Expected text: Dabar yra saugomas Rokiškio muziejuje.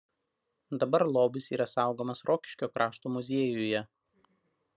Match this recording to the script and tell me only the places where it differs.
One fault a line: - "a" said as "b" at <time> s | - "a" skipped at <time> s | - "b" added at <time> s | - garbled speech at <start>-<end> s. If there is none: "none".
- "lobis" added at 1.2 s
- "krašto" added at 2.8 s